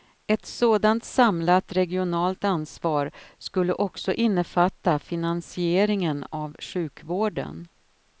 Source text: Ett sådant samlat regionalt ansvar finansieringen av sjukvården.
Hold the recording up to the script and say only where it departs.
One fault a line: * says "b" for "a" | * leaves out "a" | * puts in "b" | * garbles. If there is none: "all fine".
* puts in "skulle också innefatta"